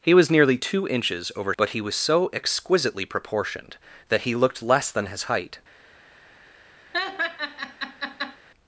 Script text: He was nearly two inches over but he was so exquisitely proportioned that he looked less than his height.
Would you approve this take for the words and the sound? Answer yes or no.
no